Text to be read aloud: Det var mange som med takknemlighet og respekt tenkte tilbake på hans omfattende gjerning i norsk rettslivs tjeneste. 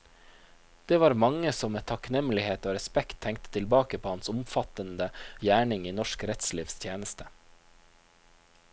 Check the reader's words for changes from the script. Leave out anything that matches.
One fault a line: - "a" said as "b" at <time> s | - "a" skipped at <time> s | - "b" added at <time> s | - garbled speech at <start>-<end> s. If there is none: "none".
none